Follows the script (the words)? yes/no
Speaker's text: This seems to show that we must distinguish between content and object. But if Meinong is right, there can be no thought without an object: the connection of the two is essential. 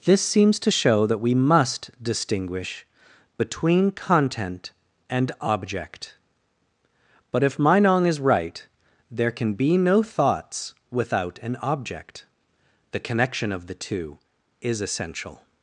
no